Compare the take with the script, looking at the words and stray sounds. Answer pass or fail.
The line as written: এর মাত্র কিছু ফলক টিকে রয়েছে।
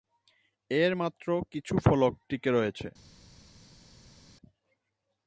pass